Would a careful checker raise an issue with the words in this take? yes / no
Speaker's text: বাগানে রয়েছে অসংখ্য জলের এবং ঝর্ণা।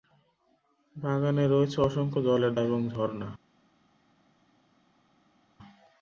no